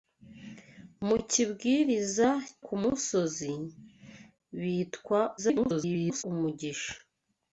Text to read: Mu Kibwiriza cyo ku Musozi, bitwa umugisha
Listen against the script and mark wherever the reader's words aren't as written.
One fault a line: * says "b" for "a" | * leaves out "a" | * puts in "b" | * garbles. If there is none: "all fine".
* leaves out "cyo"
* garbles